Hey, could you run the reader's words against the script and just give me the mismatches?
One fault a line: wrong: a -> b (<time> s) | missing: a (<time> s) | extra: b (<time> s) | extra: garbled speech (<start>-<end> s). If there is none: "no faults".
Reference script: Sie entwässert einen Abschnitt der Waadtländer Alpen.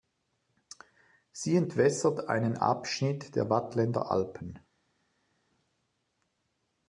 no faults